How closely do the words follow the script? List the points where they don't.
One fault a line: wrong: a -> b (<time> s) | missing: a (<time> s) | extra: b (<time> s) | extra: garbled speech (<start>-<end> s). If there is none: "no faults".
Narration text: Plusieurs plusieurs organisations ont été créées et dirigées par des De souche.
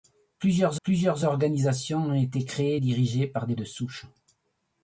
no faults